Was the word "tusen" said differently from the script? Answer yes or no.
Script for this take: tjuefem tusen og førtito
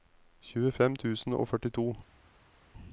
no